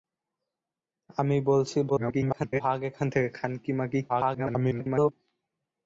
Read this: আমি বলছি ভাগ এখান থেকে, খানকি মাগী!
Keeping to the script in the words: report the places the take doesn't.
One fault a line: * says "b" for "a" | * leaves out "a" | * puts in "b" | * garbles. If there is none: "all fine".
* garbles
* garbles